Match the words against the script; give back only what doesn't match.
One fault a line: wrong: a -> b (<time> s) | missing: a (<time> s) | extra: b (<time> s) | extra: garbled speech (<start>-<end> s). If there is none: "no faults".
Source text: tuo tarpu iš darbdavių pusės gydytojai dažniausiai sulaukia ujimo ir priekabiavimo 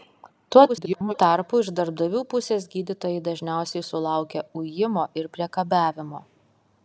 extra: garbled speech (0.7-1.1 s)